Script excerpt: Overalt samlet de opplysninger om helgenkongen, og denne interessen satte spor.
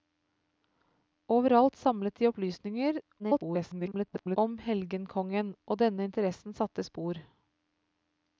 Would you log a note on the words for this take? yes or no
yes